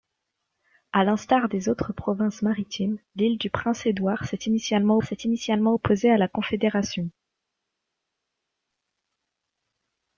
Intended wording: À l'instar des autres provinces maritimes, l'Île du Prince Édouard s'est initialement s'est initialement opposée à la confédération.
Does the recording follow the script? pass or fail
pass